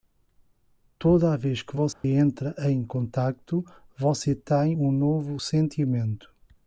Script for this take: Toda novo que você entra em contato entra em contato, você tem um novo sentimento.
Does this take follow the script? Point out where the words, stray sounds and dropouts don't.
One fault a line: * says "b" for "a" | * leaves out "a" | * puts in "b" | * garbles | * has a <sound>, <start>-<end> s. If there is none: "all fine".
* says "vez" for "novo"
* has a dropout, 1.9-2.0 s
* leaves out "entra em contato"